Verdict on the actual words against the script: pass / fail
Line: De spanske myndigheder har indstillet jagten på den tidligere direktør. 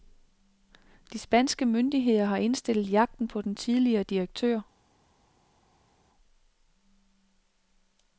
pass